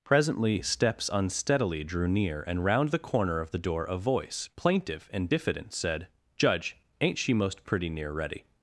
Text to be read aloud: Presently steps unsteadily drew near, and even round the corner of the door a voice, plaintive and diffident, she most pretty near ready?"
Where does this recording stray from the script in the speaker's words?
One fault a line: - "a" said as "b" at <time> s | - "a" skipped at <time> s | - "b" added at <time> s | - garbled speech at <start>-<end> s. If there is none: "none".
- "even" skipped at 2.6 s
- "said Judge ain't" added at 5.7 s